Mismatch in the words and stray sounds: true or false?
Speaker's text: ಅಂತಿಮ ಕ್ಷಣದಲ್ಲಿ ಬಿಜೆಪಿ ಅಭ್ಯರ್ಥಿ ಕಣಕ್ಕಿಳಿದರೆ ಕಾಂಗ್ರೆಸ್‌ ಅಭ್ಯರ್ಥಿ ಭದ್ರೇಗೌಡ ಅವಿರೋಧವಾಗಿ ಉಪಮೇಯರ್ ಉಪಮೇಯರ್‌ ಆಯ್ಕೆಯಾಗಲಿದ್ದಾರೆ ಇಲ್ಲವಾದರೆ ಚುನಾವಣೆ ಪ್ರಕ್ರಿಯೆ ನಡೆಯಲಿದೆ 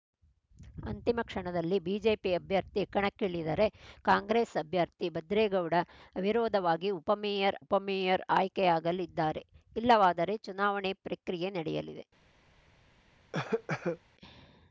true